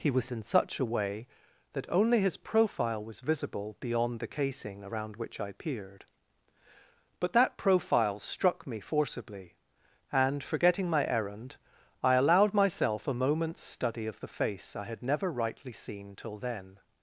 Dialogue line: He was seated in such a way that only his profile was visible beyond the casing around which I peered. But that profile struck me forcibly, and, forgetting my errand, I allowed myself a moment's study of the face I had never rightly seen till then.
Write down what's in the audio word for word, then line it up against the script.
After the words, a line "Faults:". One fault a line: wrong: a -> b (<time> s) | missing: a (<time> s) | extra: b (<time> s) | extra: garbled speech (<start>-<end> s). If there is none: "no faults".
He was in such a way that only his profile was visible beyond the casing around which I peered. But that profile struck me forcibly, and, forgetting my errand, I allowed myself a moment's study of the face I had never rightly seen till then.
Faults:
missing: seated (0.2 s)